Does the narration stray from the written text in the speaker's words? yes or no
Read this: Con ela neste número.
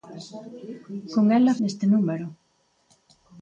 no